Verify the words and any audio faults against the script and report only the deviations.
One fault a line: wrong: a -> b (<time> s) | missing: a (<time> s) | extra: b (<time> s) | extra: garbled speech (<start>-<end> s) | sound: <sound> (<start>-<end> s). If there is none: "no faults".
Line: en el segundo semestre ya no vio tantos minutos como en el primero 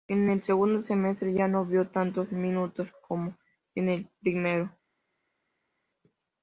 no faults